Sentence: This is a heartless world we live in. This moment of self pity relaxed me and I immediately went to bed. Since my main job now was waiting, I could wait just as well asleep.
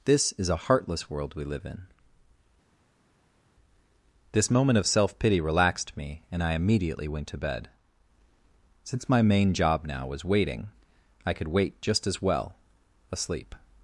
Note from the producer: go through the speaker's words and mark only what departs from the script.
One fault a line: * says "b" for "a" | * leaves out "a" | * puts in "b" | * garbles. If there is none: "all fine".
all fine